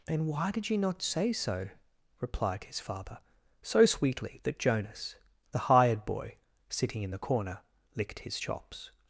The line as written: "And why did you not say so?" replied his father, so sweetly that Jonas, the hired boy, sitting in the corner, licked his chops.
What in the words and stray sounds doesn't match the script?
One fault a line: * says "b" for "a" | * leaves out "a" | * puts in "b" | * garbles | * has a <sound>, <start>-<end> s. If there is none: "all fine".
all fine